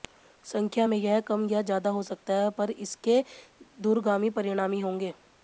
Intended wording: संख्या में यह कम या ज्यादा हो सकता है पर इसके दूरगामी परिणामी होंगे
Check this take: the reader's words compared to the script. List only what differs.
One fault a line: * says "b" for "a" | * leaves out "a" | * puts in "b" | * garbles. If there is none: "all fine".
all fine